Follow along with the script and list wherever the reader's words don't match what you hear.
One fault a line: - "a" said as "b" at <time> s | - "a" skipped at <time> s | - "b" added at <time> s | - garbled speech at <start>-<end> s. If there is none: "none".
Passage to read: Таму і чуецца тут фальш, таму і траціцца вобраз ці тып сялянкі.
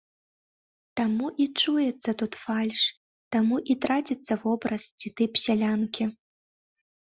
none